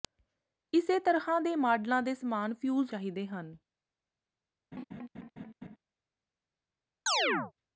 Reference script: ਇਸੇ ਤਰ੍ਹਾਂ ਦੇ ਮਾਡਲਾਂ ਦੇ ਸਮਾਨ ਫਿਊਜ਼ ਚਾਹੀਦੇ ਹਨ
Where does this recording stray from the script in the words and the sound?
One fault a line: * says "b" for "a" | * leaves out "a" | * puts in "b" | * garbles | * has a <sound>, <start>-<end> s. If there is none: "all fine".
* has a laugh, 4.7-5.8 s
* has a chirp, 7.1-7.5 s